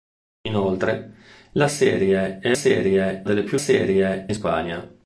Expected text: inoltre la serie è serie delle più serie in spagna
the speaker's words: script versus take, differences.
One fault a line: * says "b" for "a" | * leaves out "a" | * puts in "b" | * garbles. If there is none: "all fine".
all fine